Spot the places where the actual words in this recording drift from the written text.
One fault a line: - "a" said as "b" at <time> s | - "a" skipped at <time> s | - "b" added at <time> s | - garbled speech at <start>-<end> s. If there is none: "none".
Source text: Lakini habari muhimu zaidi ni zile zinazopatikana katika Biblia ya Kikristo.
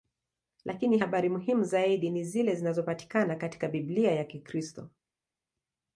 none